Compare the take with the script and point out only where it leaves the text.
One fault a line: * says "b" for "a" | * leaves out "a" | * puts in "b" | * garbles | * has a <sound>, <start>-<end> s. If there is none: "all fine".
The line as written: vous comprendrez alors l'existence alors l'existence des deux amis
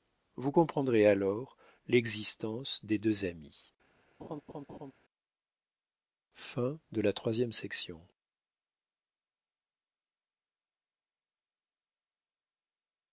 * leaves out "alors l'existence"
* has a laugh, 4.2-4.9 s